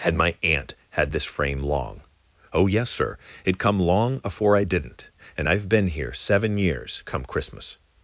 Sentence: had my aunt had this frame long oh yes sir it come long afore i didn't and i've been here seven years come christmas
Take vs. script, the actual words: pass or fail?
pass